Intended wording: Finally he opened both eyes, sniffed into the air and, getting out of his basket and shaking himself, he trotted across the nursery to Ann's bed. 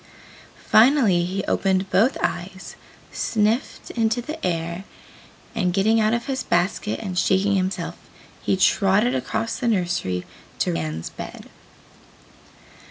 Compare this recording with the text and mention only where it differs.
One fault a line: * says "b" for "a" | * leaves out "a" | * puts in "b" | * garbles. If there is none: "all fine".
all fine